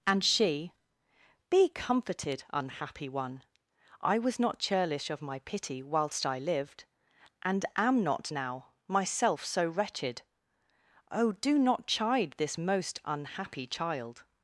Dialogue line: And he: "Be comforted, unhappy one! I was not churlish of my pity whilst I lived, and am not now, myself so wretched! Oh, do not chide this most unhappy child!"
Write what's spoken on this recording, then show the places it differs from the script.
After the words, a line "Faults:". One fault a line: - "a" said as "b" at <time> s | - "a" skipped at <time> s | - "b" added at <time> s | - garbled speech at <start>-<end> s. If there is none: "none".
And she: "Be comforted, unhappy one! I was not churlish of my pity whilst I lived, and am not now, myself so wretched! Oh, do not chide this most unhappy child!"
Faults:
- "he" said as "she" at 0.2 s